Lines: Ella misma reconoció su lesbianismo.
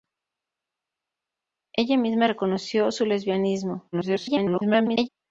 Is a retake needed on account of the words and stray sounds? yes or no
yes